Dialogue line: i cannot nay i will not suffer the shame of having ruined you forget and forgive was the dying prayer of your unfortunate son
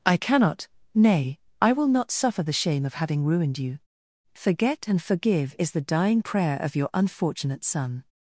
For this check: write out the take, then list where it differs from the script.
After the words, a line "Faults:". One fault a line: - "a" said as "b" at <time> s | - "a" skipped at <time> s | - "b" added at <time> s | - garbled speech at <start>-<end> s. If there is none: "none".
i cannot nay i will not suffer the shame of having ruined you forget and forgive is the dying prayer of your unfortunate son
Faults:
- "was" said as "is" at 5.6 s